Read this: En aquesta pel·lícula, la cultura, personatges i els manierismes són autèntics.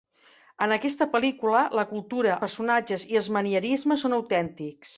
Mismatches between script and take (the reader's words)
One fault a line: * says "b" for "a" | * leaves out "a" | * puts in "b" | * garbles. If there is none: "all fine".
all fine